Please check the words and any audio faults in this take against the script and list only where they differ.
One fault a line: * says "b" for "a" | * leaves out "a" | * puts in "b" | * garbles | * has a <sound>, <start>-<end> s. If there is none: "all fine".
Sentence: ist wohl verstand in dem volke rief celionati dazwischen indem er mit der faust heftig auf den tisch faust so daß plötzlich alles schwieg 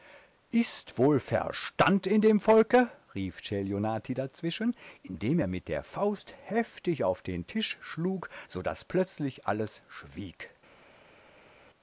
* says "schlug" for "faust"